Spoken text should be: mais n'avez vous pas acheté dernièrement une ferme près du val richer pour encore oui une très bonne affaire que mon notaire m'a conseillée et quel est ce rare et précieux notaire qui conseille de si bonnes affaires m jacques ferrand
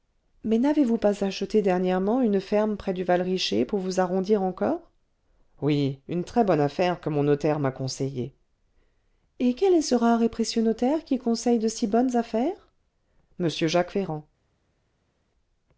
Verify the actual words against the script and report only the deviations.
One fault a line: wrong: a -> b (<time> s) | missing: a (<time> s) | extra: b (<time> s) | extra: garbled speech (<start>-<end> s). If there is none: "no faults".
extra: vous arrondir (3.8 s)